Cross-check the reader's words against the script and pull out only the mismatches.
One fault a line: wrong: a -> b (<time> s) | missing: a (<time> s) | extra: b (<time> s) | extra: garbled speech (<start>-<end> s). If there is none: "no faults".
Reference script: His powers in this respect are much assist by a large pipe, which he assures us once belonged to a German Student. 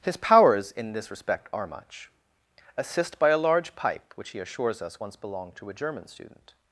no faults